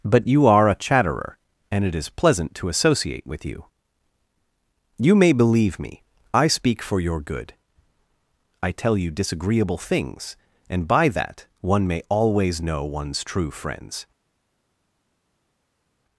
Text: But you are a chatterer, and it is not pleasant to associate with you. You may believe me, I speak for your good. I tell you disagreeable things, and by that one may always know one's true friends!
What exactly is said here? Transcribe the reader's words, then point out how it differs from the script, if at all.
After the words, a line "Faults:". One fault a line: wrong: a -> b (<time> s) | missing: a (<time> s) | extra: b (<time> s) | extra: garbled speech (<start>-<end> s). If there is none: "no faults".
But you are a chatterer, and it is pleasant to associate with you. You may believe me, I speak for your good. I tell you disagreeable things, and by that one may always know one's true friends!
Faults:
missing: not (2.1 s)